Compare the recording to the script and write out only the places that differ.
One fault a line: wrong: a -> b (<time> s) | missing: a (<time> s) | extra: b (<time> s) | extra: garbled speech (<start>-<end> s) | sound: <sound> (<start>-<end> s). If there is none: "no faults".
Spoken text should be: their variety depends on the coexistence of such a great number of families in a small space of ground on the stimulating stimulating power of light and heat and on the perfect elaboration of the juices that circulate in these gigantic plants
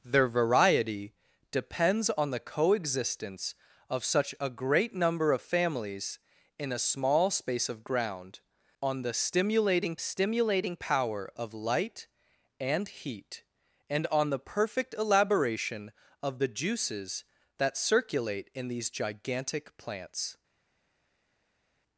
no faults